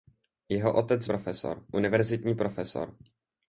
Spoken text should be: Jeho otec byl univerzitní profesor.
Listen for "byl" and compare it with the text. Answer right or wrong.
wrong